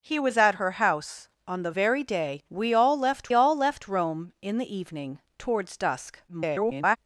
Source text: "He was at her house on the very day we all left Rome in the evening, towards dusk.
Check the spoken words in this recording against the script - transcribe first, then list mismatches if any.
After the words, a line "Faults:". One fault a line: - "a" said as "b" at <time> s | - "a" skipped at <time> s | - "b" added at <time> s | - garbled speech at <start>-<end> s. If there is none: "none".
"He was at her house on the very day we all left all left Rome in the evening, towards dusk. [garbled]
Faults:
- "all left" added at 3.3 s
- garbled speech at 6.3-7.0 s